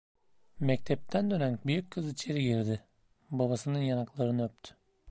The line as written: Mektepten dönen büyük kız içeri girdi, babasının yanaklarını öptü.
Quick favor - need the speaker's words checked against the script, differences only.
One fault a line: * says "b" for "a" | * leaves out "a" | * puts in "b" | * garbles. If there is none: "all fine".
all fine